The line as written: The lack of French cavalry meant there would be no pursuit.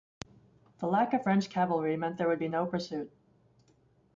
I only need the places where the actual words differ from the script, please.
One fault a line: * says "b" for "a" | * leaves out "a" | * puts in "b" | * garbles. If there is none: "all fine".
all fine